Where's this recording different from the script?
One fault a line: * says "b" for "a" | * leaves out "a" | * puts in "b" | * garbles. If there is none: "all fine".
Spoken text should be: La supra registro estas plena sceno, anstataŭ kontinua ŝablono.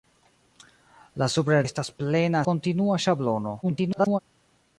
* leaves out "registro"
* leaves out "sceno anstataŭ"
* garbles